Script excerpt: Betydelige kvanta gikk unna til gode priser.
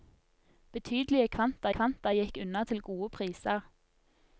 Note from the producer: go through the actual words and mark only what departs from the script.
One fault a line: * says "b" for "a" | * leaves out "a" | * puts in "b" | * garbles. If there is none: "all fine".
* puts in "kvanta"